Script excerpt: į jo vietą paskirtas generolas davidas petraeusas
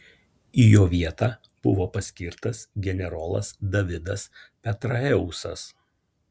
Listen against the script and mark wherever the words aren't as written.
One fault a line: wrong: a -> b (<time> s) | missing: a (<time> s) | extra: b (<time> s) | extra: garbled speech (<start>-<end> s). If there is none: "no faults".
extra: buvo (1.7 s)